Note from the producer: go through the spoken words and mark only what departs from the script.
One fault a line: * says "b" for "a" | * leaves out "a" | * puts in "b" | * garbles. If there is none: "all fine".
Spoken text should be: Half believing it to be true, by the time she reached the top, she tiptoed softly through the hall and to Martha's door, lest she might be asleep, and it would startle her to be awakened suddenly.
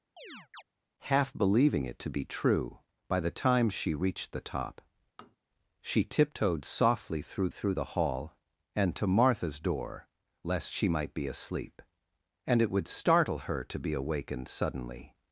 * puts in "through"